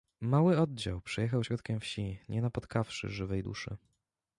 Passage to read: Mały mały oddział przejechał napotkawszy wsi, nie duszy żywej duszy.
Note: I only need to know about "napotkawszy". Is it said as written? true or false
false